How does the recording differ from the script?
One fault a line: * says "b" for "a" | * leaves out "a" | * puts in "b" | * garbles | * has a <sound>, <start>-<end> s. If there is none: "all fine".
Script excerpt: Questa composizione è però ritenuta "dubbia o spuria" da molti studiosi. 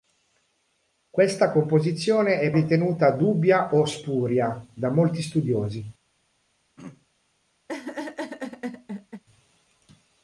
* leaves out "però"
* has a throat clearing, 6.8-7.1 s
* has a laugh, 7.7-9.2 s